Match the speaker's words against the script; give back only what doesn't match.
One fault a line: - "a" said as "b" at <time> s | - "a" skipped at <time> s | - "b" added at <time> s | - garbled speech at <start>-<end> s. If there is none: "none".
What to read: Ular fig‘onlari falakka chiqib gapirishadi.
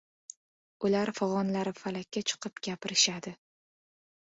none